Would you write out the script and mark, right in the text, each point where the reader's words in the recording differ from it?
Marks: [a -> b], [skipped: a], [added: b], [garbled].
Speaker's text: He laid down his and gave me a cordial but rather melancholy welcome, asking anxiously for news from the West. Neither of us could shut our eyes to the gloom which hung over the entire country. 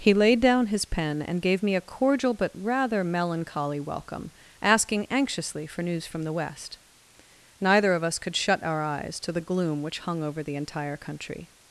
He laid down his [added: pen] and gave me a cordial but rather melancholy welcome, asking anxiously for news from the West. Neither of us could shut our eyes to the gloom which hung over the entire country.